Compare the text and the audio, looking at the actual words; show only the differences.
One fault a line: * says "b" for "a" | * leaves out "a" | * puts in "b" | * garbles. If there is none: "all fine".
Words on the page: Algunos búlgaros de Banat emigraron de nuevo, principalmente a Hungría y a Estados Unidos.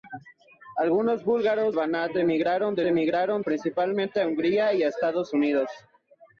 * leaves out "de"
* says "emigraron" for "nuevo"